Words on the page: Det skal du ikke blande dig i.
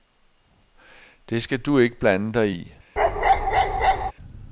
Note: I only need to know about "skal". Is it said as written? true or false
true